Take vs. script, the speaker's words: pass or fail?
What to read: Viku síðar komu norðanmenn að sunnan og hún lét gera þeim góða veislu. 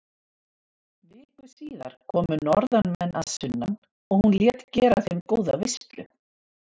pass